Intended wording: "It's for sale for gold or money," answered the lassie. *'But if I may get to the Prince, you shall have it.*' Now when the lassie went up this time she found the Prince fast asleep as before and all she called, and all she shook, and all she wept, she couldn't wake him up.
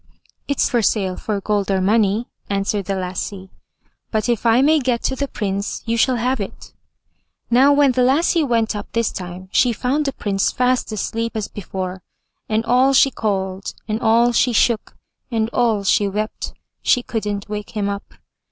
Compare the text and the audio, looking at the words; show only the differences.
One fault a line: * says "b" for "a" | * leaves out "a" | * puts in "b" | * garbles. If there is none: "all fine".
all fine